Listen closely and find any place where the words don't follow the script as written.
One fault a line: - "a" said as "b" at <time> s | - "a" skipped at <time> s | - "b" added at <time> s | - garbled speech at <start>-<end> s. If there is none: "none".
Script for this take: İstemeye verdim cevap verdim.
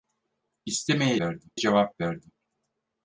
none